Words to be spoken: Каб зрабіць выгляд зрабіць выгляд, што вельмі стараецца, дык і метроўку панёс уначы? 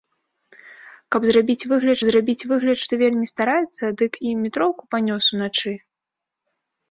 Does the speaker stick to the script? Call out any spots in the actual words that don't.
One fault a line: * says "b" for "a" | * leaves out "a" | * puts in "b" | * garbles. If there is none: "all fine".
all fine